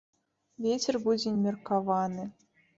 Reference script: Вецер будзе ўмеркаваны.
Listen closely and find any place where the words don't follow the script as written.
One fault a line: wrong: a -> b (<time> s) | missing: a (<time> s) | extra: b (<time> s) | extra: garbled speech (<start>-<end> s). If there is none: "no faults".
no faults